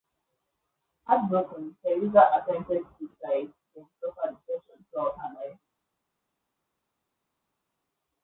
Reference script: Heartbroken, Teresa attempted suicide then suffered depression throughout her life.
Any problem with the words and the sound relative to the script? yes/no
no